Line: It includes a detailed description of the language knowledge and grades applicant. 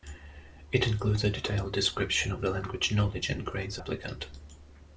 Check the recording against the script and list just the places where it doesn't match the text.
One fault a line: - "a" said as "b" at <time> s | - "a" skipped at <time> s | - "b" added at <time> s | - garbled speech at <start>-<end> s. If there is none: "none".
none